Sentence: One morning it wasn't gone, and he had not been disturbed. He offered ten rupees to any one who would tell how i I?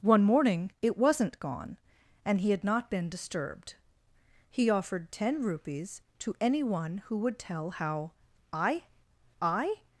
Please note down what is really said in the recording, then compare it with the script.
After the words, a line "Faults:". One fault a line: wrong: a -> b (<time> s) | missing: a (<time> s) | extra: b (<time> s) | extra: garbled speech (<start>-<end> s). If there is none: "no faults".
One morning it wasn't gone, and he had not been disturbed. He offered ten rupees to any one who would tell how i I?
Faults:
no faults